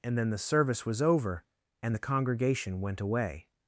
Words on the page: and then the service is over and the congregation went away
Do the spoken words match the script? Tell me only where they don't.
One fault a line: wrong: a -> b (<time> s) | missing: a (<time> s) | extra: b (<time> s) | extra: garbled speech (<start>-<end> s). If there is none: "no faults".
wrong: is -> was (0.8 s)